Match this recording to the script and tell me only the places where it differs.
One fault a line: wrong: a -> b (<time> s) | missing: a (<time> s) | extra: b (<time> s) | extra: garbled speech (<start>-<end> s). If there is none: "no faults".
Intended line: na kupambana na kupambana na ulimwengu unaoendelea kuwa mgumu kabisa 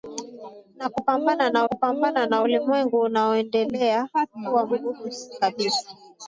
no faults